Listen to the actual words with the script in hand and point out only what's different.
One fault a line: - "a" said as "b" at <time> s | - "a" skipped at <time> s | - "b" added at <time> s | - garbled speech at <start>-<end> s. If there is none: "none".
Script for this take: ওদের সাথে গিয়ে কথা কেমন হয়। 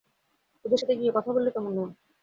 - "বললে" added at 1.3 s